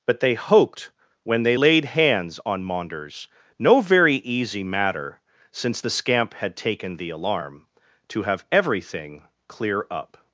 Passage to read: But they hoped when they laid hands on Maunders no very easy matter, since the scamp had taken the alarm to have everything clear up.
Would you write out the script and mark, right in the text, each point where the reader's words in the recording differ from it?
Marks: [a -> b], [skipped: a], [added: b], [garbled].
But they hoped when they laid hands on Maunders no very easy matter, since the scamp had taken the alarm to have everything clear up.